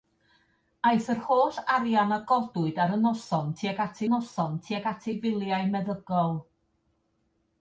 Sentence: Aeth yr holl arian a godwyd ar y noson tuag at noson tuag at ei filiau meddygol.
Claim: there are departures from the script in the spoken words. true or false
false